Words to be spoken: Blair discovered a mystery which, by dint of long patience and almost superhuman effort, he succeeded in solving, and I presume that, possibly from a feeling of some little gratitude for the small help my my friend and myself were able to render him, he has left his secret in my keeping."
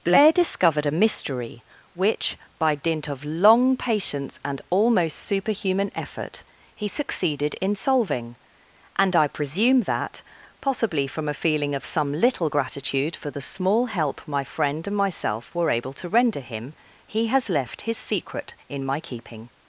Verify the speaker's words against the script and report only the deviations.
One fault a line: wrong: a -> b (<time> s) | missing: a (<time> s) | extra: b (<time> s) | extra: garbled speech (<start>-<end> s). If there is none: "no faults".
missing: my (14.4 s)